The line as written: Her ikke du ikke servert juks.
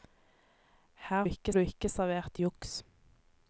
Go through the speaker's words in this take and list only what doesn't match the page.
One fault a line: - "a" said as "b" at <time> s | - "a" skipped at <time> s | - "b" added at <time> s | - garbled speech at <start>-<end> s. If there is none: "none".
none